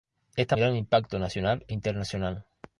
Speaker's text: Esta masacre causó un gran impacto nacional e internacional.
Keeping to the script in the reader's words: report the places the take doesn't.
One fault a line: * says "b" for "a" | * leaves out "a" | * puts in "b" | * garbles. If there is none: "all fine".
* leaves out "masacre causó un"